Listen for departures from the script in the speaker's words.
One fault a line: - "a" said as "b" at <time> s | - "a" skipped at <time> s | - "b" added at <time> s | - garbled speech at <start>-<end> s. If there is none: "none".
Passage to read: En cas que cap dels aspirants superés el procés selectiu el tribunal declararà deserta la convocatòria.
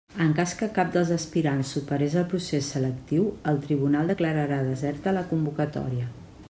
none